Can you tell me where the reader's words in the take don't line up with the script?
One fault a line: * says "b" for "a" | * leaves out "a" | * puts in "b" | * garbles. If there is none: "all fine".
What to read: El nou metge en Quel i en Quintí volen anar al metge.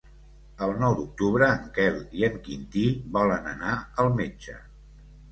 * says "d'octubre" for "metge"